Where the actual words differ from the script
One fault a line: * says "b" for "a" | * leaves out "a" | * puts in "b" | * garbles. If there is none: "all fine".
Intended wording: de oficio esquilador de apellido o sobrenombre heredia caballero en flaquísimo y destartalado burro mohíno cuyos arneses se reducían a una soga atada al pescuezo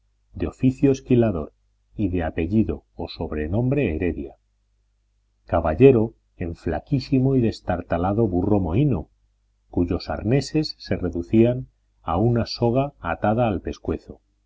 * puts in "y"